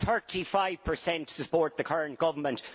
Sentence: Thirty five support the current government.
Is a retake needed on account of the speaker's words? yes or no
yes